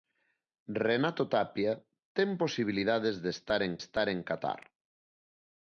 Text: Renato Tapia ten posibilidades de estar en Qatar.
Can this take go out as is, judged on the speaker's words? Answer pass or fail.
fail